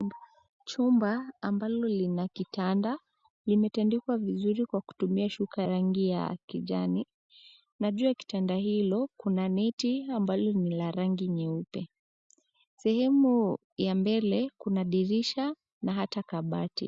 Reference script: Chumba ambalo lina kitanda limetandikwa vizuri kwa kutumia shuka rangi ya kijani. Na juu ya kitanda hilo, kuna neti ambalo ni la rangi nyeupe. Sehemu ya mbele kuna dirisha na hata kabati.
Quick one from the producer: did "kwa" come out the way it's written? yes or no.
yes